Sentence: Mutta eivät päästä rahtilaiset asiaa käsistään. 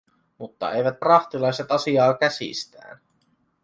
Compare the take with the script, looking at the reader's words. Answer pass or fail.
fail